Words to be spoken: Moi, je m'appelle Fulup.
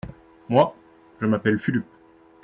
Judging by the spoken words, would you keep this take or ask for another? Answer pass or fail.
pass